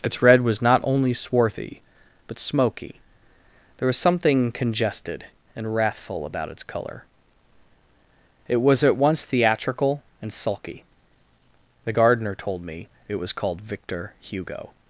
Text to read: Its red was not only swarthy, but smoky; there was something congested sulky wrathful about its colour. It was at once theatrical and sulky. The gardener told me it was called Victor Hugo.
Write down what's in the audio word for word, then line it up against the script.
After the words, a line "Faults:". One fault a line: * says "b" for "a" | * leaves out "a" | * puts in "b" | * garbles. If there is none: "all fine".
Its red was not only swarthy, but smoky; there was something congested and wrathful about its colour. It was at once theatrical and sulky. The gardener told me it was called Victor Hugo.
Faults:
* says "and" for "sulky"